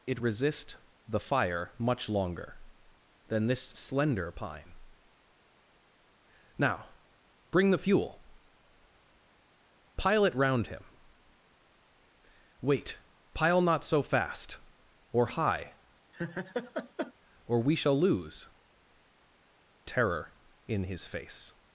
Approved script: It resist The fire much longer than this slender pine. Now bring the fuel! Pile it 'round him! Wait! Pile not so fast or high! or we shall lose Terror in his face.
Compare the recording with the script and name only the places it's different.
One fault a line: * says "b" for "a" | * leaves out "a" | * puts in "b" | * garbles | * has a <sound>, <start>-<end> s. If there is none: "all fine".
* has a laugh, 16.1-17.1 s